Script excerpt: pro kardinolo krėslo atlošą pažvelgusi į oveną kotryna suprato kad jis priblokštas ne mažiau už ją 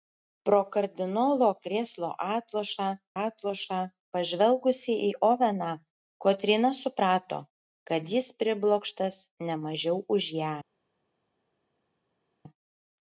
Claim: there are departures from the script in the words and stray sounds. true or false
true